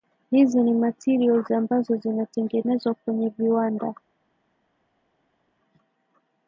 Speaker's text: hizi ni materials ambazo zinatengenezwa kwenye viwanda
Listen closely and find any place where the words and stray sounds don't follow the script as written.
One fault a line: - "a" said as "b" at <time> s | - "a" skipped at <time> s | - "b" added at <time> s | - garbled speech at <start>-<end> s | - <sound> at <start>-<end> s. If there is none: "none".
none